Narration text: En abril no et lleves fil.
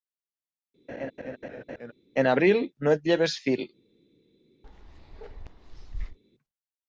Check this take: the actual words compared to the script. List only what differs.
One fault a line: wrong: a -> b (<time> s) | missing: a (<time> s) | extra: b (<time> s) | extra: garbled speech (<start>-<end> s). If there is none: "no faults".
no faults